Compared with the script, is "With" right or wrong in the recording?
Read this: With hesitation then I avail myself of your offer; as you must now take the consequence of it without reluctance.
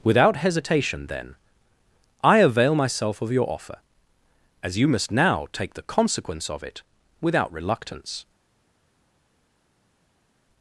wrong